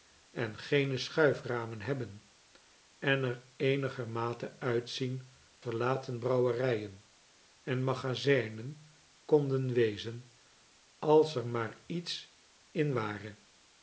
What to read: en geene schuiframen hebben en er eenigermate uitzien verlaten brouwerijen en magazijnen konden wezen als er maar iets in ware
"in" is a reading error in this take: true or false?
false